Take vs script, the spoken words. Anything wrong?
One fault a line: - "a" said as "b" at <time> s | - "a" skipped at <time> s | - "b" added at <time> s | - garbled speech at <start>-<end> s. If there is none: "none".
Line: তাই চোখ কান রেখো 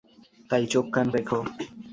none